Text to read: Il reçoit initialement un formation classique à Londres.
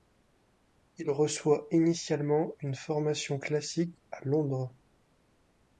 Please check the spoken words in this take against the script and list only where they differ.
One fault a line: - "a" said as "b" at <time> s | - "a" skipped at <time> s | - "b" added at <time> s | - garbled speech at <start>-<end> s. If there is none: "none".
- "un" said as "une" at 2.6 s